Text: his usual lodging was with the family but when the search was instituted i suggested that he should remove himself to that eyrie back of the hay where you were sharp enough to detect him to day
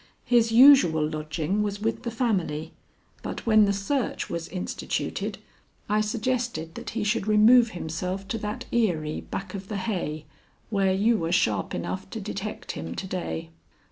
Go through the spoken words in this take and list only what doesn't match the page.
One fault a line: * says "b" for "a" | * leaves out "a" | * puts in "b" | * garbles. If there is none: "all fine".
all fine